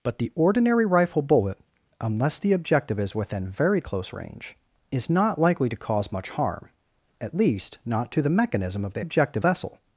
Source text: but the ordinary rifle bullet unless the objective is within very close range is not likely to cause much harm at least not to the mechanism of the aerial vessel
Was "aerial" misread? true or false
true